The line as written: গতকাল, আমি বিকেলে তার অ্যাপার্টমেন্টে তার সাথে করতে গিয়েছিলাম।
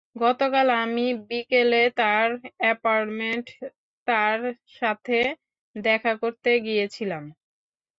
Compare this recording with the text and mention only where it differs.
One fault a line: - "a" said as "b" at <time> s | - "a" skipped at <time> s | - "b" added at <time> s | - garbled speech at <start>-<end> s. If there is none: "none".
- "দেখা" added at 5.8 s